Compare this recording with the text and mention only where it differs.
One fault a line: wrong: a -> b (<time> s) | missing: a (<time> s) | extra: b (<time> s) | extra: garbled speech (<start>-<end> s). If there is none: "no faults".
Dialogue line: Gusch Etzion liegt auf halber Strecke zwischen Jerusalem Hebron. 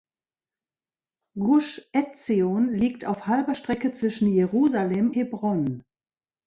no faults